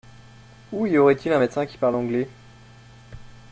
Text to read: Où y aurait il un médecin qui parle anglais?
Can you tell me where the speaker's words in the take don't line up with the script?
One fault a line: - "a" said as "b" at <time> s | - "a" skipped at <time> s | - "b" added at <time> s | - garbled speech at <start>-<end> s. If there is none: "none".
none